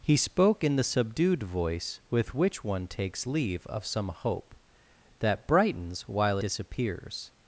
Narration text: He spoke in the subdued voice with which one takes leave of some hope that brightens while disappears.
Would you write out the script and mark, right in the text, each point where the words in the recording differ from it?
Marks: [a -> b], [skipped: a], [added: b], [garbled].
He spoke in the subdued voice with which one takes leave of some hope that brightens while disappears.